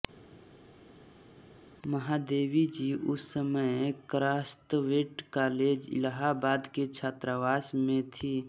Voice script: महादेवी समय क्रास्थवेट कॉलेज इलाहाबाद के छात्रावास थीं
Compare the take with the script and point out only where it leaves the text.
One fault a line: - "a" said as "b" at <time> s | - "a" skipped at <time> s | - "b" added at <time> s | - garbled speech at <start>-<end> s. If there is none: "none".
- "जी उस" added at 2.7 s
- "में" added at 7.8 s